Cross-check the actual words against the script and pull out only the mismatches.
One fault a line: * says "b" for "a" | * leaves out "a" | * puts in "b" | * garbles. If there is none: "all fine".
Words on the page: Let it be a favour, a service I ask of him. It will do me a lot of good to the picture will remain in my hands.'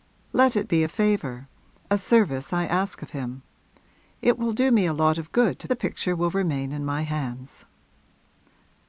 all fine